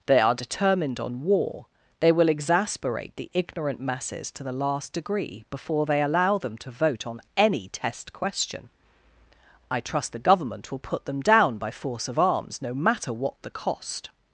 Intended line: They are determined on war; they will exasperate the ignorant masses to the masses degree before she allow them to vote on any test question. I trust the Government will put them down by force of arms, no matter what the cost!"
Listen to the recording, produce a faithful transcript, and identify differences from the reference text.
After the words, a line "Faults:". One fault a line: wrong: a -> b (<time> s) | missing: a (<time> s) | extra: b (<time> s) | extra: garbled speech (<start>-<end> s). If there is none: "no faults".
They are determined on war; they will exasperate the ignorant masses to the last degree before they allow them to vote on any test question. I trust the Government will put them down by force of arms, no matter what the cost!"
Faults:
wrong: masses -> last (4.5 s)
wrong: she -> they (5.9 s)